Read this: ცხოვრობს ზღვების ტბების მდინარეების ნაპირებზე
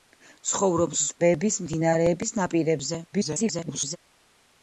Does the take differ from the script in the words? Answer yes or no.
yes